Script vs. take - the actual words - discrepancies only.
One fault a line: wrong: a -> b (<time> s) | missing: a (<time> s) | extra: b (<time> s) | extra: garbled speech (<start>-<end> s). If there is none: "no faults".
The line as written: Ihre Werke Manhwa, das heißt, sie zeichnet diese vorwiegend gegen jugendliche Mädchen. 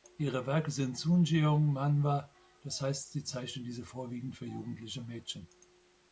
extra: sind Sunjeong (0.7 s)
wrong: gegen -> für (4.3 s)